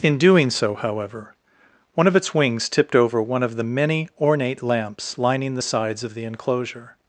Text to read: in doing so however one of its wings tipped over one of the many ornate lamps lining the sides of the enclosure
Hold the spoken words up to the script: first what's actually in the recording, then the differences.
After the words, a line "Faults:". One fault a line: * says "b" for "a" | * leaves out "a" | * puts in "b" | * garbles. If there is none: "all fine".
in doing so however one of its wings tipped over one of the many ornate lamps lining the sides of the enclosure
Faults:
all fine